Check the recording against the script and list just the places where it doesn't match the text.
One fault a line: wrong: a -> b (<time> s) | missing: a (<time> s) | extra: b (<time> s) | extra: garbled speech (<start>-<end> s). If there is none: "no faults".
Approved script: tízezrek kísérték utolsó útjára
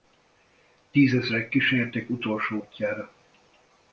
no faults